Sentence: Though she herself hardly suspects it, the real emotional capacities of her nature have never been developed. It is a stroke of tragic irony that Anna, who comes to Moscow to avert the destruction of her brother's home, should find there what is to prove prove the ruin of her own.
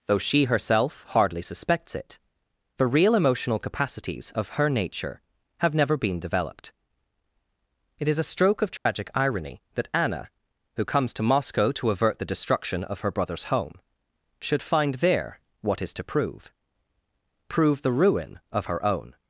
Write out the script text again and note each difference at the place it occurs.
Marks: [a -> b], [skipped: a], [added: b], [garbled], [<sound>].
Though she herself hardly suspects it, the real emotional capacities of her nature have never been developed. It is a stroke of tragic [dropout] irony that Anna, who comes to Moscow to avert the destruction of her brother's home, should find there what is to prove prove the ruin of her own.